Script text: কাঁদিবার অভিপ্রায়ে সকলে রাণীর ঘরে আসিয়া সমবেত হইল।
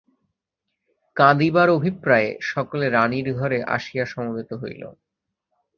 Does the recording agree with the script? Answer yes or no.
yes